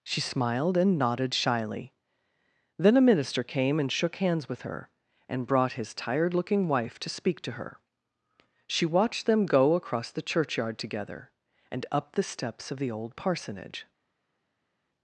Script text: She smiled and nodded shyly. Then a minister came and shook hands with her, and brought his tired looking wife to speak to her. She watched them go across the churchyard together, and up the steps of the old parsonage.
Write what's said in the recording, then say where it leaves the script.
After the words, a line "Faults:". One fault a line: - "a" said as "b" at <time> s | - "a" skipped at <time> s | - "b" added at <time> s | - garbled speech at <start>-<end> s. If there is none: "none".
She smiled and nodded shyly. Then a minister came and shook hands with her, and brought his tired looking wife to speak to her. She watched them go across the churchyard together, and up the steps of the old parsonage.
Faults:
none